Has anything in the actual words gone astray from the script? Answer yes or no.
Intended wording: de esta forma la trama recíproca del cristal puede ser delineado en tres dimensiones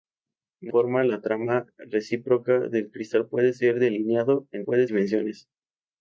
yes